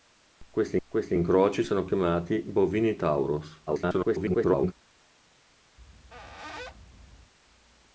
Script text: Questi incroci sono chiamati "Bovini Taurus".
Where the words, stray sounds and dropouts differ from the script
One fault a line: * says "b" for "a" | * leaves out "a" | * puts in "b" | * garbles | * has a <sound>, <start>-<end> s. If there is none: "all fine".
* puts in "questi"
* garbles
* has a squeak, 5.8-7.3 s